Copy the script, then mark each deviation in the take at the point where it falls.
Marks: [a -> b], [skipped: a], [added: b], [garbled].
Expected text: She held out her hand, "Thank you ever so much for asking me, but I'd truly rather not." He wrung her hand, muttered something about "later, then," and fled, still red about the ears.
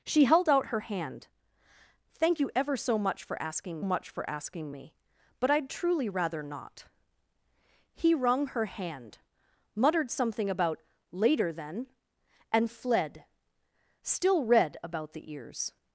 She held out her hand, "Thank you ever so much for asking [added: much for asking] me, but I'd truly rather not." He wrung her hand, muttered something about "later, then," and fled, still red about the ears.